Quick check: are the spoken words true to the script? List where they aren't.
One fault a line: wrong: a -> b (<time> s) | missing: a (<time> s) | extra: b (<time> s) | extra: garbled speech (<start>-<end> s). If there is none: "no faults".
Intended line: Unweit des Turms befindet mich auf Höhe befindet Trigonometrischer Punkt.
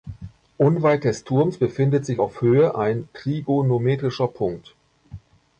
wrong: mich -> sich (2.1 s)
wrong: befindet -> ein (2.8 s)